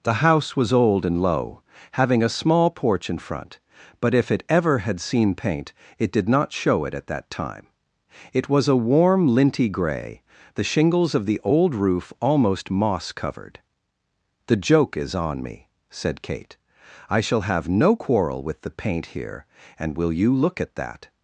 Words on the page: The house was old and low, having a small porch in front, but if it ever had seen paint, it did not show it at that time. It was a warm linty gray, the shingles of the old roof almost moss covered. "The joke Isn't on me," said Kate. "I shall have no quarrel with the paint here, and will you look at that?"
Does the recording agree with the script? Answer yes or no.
no